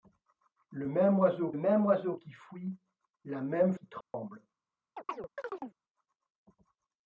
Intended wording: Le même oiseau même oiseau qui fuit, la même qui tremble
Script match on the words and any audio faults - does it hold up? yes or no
no